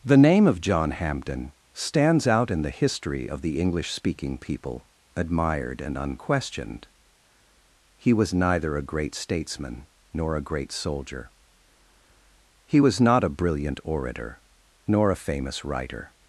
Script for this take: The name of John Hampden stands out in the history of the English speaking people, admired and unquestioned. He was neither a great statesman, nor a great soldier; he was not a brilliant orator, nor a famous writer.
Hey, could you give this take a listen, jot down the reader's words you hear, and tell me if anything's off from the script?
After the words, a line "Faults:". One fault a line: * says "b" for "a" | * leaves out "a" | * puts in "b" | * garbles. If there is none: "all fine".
The name of John Hampden stands out in the history of the English speaking people, admired and unquestioned. He was neither a great statesman, nor a great soldier; he was not a brilliant orator, nor a famous writer.
Faults:
all fine